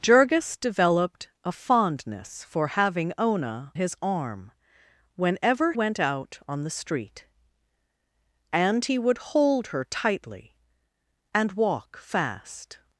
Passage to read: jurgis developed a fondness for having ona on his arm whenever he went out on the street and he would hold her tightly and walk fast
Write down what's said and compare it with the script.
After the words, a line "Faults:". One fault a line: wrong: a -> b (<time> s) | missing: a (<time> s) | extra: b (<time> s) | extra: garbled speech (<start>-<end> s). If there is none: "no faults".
jurgis developed a fondness for having ona his arm whenever went out on the street and he would hold her tightly and walk fast
Faults:
missing: on (3.7 s)
missing: he (5.7 s)